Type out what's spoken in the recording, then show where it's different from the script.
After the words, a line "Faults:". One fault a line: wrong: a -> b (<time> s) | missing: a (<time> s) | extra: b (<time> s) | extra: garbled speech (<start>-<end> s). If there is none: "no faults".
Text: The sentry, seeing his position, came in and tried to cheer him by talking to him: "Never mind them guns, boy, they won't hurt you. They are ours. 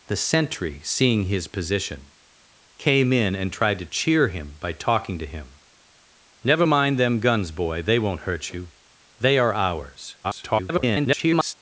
The sentry, seeing his position, came in and tried to cheer him by talking to him: "Never mind them guns, boy, they won't hurt you. They are ours. [garbled]
Faults:
extra: garbled speech (10.2-11.5 s)